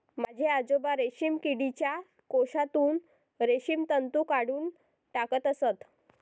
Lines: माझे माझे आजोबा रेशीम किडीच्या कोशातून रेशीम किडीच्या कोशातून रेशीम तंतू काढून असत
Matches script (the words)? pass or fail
fail